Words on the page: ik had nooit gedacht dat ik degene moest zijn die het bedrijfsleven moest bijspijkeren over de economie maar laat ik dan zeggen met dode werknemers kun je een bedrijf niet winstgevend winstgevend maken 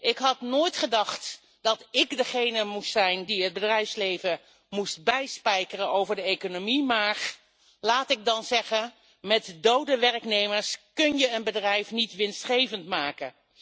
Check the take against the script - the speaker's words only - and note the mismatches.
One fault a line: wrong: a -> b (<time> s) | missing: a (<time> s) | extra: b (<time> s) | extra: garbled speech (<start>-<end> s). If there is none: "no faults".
missing: winstgevend (12.9 s)